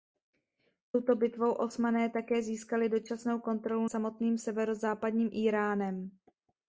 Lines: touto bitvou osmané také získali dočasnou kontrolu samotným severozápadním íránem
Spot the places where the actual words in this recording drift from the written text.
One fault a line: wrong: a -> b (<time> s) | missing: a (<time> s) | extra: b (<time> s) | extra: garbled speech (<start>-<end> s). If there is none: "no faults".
no faults